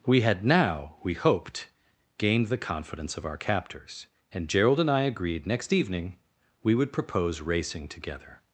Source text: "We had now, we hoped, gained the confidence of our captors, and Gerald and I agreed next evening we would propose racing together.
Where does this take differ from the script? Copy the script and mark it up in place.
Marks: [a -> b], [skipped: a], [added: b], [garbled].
"We had now, we hoped, gained the confidence of our captors, and Gerald and I agreed next evening we would propose racing together.